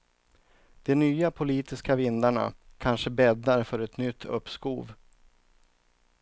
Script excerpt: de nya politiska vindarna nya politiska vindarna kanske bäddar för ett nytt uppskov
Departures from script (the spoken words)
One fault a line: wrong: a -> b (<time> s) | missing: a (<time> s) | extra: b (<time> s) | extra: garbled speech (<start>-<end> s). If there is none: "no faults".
missing: nya politiska vindarna (2.5 s)